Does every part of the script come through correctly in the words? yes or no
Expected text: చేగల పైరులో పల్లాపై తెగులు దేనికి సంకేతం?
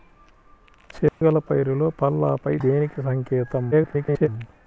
no